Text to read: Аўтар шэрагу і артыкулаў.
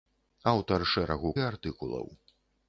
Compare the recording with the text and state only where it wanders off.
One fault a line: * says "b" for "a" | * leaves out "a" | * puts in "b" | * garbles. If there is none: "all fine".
all fine